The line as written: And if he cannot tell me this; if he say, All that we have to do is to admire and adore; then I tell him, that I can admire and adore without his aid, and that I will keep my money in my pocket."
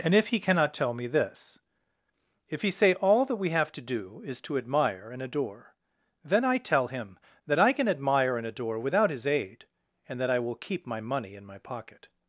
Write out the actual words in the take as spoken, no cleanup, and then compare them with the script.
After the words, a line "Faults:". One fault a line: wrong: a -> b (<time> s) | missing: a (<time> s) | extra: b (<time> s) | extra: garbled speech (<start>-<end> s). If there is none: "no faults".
And if he cannot tell me this; if he say, All that we have to do is to admire and adore; then I tell him, that I can admire and adore without his aid, and that I will keep my money in my pocket."
Faults:
no faults